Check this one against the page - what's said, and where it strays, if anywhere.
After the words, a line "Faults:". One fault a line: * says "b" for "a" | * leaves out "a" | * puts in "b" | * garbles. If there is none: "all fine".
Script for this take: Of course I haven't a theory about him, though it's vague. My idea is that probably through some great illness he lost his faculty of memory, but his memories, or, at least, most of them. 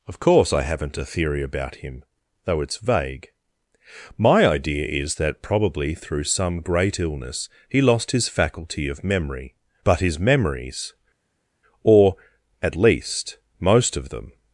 Of course I haven't a theory about him, though it's vague. My idea is that probably through some great illness he lost his faculty of memory, but his memories, or, at least, most of them.
Faults:
all fine